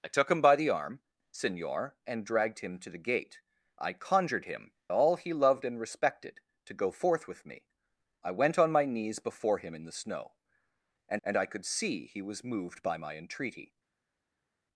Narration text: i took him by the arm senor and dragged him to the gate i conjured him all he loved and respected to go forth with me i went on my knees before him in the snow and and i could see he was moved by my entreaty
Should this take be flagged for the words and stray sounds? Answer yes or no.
no